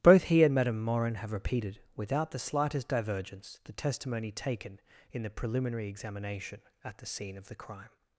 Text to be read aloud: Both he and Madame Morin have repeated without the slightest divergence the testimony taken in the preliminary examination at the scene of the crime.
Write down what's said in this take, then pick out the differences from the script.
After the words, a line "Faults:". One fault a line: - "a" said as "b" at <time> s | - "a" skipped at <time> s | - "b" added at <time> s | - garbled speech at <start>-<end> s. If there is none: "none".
Both he and Madame Morin have repeated without the slightest divergence the testimony taken in the preliminary examination at the scene of the crime.
Faults:
none